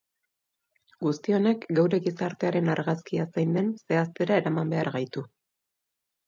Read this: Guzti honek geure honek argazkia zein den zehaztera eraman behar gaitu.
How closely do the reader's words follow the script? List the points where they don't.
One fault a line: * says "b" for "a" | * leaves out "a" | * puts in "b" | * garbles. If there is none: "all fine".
* says "gizartearen" for "honek"